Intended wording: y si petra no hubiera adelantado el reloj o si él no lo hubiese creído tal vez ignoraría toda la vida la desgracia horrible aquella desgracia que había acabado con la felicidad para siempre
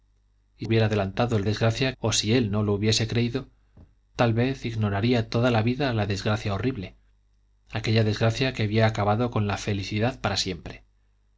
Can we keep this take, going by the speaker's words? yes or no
no